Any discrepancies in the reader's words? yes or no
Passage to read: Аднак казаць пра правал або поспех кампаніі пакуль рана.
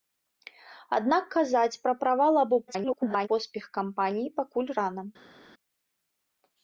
yes